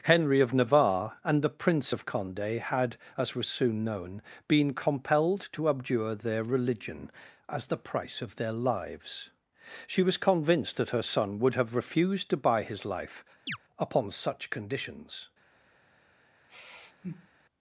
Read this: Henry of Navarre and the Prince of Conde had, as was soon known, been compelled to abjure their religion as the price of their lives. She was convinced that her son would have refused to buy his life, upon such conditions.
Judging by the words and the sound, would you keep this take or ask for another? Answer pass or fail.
fail